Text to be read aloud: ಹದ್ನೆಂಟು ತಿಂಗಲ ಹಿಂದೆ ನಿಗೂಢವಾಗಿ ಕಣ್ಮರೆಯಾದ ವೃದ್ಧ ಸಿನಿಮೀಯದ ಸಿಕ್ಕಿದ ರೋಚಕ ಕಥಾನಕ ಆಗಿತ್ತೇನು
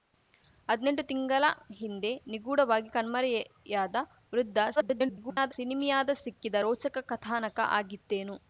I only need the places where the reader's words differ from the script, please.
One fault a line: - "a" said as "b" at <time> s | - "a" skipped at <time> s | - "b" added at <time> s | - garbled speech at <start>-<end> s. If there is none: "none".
- garbled speech at 4.8-5.5 s